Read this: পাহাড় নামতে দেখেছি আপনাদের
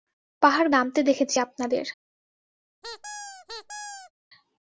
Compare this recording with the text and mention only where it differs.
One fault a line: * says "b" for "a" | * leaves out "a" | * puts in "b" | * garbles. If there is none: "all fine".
all fine